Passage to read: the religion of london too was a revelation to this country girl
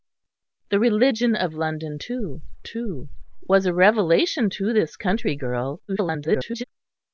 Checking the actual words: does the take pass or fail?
fail